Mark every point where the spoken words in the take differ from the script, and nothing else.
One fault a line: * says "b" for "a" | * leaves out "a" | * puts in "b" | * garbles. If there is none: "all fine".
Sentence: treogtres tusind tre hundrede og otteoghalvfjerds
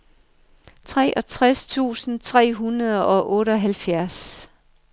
all fine